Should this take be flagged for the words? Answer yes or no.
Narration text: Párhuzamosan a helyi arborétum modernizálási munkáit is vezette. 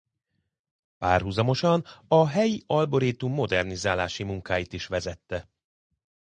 no